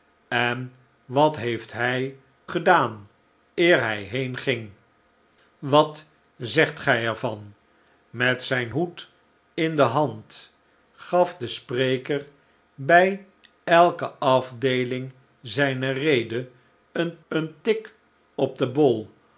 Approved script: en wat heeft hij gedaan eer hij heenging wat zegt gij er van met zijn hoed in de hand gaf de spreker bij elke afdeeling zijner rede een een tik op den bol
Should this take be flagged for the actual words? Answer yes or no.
no